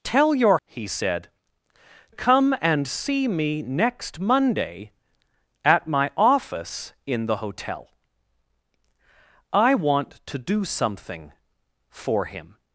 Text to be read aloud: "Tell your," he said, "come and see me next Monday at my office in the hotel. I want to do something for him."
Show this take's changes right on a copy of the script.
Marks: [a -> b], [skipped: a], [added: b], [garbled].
"Tell your," he said, "come and see me next Monday at my office in the hotel. I want to do something for him."